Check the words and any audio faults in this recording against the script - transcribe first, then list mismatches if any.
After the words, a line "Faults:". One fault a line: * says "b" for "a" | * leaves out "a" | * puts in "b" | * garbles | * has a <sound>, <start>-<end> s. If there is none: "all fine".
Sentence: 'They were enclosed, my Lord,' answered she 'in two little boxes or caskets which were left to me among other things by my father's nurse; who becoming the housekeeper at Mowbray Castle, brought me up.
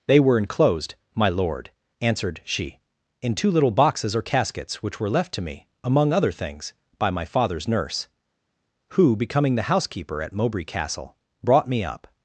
'They were enclosed, my Lord,' answered she 'in two little boxes or caskets which were left to me among other things by my father's nurse; who becoming the housekeeper at Mowbray Castle, brought me up.
Faults:
all fine